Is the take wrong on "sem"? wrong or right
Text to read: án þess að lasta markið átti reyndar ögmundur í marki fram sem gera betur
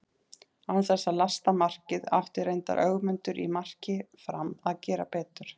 wrong